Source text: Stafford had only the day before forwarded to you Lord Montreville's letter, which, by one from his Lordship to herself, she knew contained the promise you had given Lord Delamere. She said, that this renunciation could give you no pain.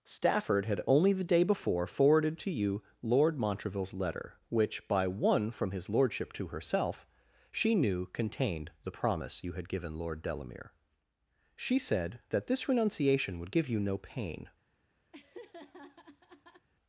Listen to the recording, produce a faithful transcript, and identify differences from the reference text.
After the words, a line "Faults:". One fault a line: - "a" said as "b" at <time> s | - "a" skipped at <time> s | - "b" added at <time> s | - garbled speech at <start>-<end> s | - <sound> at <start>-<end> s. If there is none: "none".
Stafford had only the day before forwarded to you Lord Montreville's letter, which, by one from his Lordship to herself, she knew contained the promise you had given Lord Delamere. She said, that this renunciation would give you no pain.
Faults:
- "could" said as "would" at 13.4 s
- laugh at 15.1-16.7 s